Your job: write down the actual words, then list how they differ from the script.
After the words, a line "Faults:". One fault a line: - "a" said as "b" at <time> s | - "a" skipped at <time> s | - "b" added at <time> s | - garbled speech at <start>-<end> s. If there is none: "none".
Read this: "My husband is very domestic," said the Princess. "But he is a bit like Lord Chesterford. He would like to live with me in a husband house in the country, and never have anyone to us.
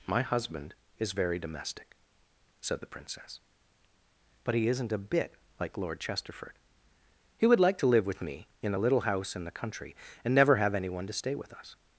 "My husband is very domestic," said the Princess. "But he isn't a bit like Lord Chesterford. He would like to live with me in a little house in the country, and never have anyone to stay with us.
Faults:
- "is" said as "isn't" at 4.7 s
- "husband" said as "little" at 8.8 s
- "stay with" added at 11.1 s